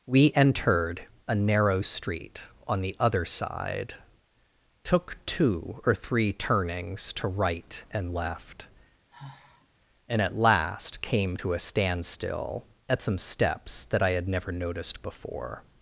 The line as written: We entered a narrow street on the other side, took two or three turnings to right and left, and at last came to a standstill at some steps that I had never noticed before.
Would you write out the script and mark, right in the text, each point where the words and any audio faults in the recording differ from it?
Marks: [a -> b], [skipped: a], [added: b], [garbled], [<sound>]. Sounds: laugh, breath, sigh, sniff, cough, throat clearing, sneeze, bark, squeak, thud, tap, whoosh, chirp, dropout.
We entered a narrow street on the other side, took two or three turnings to right and left, [sigh] and at last came to a standstill at some steps that I had never noticed before.